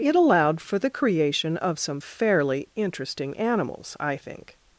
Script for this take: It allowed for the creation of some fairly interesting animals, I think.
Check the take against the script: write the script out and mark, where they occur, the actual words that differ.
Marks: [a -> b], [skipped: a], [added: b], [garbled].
It allowed for the creation of some fairly interesting animals, I think.